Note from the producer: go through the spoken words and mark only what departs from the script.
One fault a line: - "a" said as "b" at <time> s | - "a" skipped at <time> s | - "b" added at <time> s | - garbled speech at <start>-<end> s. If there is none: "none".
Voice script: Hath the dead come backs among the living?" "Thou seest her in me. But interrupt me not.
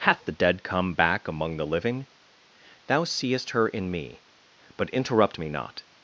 - "backs" said as "back" at 0.9 s